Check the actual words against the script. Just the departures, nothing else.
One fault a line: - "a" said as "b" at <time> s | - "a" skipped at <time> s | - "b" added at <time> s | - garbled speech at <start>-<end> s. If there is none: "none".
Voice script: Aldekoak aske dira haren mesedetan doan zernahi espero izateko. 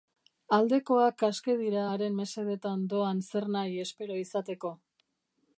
none